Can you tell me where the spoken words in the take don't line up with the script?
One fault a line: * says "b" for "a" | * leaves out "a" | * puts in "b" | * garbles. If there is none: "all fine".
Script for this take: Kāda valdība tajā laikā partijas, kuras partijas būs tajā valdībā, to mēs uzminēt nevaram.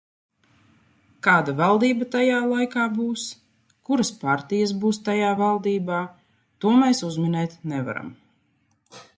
* says "būs" for "partijas"